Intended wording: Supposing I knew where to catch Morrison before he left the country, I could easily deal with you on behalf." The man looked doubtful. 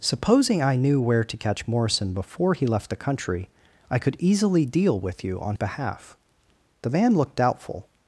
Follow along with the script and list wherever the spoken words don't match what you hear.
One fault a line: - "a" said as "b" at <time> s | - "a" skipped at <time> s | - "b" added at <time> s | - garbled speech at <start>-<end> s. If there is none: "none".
none